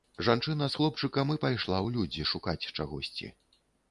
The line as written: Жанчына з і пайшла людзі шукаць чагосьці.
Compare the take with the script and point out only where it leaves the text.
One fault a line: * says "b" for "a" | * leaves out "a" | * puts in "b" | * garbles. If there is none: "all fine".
* puts in "хлопчыкам"
* puts in "ў"